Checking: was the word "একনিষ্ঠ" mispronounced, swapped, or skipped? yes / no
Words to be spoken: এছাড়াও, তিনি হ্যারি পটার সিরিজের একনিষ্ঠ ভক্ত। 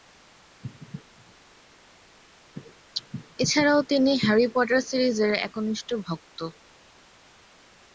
no